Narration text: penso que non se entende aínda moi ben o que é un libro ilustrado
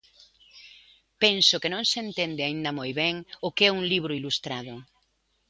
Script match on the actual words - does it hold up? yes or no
yes